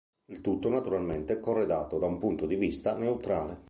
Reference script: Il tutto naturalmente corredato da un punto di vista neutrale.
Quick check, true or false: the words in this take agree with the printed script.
true